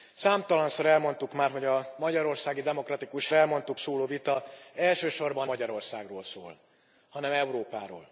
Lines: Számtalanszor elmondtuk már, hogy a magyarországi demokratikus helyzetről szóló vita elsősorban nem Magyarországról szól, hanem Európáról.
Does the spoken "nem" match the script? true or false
false